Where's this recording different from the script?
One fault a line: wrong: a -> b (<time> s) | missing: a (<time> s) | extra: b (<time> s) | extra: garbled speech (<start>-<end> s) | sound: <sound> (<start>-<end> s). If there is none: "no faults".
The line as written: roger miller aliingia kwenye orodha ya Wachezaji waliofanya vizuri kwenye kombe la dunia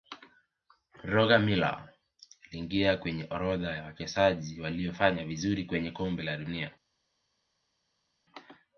no faults